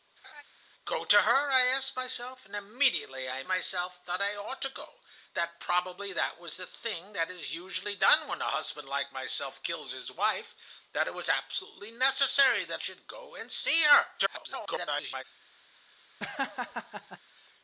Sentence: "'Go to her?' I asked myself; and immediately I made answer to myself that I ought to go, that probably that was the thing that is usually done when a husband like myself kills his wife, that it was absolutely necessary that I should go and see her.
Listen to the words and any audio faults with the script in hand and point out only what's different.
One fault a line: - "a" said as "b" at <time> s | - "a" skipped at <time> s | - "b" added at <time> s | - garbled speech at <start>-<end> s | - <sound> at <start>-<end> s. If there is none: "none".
- laugh at 0.2-0.4 s
- "made answer to" skipped at 3.4 s
- "I" skipped at 12.8 s
- garbled speech at 14.2-15.2 s
- laugh at 16.2-17.2 s